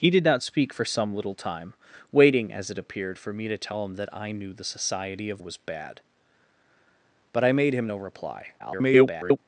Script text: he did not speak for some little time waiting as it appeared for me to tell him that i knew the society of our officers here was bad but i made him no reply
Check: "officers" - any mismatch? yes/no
yes